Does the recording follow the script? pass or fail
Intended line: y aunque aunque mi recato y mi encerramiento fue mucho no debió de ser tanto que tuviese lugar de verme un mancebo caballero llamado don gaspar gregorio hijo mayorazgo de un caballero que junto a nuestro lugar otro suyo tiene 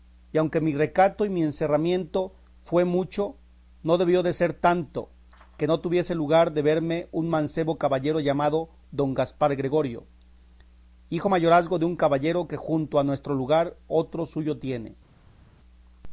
fail